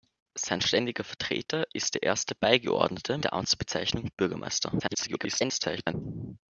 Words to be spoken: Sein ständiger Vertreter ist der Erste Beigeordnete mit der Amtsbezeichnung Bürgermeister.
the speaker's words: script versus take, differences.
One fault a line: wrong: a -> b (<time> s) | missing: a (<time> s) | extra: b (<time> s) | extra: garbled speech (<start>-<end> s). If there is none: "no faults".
missing: mit (3.2 s)
extra: garbled speech (4.8-5.9 s)